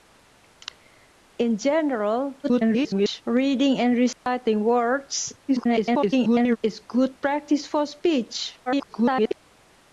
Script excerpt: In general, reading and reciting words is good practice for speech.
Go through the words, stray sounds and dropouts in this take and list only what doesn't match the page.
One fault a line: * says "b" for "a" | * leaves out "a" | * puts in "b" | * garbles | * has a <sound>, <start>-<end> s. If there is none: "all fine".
* garbles
* has a dropout, 4.1-4.3 s
* garbles
* garbles